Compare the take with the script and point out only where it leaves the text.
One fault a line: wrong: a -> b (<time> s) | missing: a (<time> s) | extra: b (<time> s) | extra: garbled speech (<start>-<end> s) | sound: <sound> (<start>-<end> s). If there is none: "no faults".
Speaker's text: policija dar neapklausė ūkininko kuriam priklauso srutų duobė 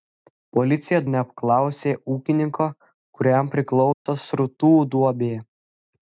missing: dar (1.0 s)
sound: dropout (3.9-4.1 s)